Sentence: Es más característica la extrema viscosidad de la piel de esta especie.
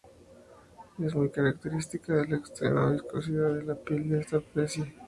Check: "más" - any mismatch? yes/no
yes